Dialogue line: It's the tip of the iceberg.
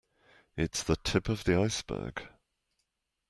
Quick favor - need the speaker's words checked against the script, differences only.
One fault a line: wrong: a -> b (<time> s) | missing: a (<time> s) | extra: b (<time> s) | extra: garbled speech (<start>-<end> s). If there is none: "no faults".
no faults